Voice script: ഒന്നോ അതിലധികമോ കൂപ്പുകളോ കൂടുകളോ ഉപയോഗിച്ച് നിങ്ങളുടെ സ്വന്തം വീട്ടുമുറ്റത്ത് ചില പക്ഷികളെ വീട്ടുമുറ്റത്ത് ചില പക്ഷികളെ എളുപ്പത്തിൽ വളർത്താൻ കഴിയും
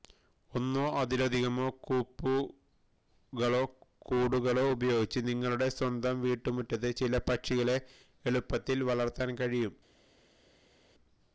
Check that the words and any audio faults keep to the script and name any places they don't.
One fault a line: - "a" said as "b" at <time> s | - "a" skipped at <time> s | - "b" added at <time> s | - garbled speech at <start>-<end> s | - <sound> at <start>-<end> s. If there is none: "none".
- "വീട്ടുമുറ്റത്ത് ചില പക്ഷികളെ" skipped at 7.8 s